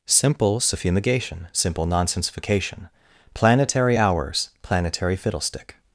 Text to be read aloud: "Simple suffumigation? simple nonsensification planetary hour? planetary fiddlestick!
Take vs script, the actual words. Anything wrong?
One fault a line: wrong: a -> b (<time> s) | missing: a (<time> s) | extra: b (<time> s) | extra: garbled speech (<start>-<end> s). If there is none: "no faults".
wrong: hour -> hours (4.0 s)